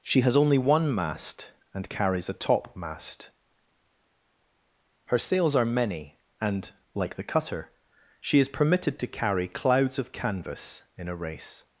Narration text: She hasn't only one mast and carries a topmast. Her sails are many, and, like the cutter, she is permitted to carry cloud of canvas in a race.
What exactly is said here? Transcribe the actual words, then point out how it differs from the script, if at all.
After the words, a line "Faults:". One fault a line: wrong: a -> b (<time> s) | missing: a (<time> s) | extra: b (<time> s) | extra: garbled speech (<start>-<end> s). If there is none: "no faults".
She has only one mast and carries a topmast. Her sails are many, and, like the cutter, she is permitted to carry clouds of canvas in a race.
Faults:
wrong: hasn't -> has (0.2 s)
wrong: cloud -> clouds (9.5 s)